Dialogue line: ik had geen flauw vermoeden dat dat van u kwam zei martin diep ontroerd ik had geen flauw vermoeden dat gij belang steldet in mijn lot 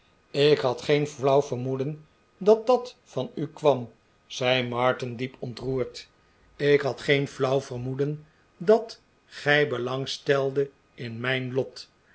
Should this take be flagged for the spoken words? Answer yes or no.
no